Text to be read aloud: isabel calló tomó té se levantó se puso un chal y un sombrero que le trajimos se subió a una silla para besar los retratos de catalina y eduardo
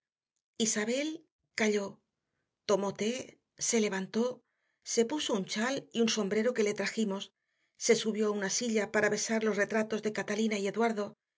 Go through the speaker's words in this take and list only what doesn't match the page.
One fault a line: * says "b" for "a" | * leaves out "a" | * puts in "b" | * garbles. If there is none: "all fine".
all fine